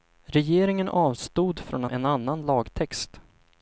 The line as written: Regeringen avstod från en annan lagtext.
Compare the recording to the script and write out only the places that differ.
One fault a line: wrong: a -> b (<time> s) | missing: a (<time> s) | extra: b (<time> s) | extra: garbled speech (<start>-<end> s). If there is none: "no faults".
no faults